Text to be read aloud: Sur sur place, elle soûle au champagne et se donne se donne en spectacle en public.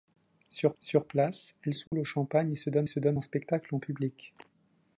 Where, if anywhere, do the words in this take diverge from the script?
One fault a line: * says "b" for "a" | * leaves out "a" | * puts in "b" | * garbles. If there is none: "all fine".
all fine